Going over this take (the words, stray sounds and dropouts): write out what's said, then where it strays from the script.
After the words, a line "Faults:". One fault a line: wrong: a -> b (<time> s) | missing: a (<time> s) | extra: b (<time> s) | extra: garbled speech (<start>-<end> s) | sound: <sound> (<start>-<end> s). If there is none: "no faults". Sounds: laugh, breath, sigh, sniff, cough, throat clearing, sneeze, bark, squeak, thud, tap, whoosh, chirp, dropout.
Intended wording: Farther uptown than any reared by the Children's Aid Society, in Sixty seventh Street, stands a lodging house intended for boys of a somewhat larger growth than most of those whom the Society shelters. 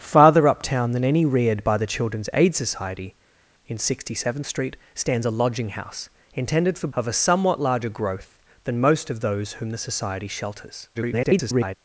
Farther uptown than any reared by the Children's Aid Society, in Sixty seventh Street, stands a lodging house intended for of a somewhat larger growth than most of those whom the Society shelters. [garbled]
Faults:
missing: boys (6.9 s)
extra: garbled speech (10.9-11.8 s)